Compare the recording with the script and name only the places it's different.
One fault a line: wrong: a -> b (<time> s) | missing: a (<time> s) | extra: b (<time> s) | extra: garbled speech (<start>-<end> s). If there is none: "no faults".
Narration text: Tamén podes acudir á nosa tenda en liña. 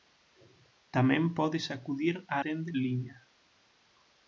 missing: nosa (2.4 s)